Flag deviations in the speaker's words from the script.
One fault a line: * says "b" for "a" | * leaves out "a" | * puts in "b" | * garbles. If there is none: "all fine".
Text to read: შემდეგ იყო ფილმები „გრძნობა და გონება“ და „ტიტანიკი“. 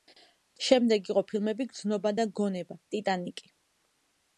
* leaves out "და"